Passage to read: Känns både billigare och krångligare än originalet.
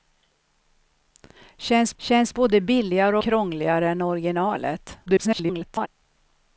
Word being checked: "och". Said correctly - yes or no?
no